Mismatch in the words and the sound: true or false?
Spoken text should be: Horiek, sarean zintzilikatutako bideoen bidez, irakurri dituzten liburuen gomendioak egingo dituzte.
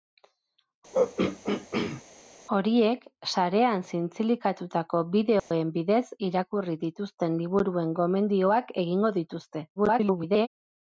true